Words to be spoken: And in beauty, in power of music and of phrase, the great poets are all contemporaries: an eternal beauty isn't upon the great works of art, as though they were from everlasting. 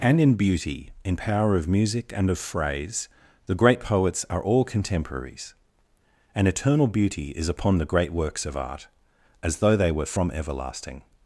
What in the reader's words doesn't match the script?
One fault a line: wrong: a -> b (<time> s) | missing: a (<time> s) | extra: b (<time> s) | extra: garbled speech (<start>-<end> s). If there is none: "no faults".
wrong: isn't -> is (7.3 s)